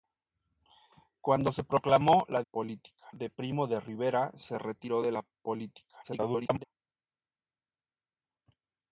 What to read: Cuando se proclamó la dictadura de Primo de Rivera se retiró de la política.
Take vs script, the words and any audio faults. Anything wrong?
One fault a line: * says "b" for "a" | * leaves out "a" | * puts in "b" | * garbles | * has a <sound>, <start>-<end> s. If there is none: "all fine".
* says "política" for "dictadura"
* garbles